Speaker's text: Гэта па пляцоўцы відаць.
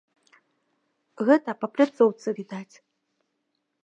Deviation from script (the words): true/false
false